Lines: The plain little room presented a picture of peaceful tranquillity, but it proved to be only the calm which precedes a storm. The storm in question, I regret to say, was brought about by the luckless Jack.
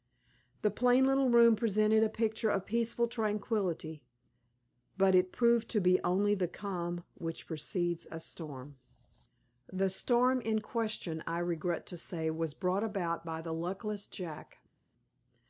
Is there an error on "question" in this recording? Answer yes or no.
no